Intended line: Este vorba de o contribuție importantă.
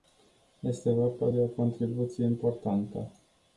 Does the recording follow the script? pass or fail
pass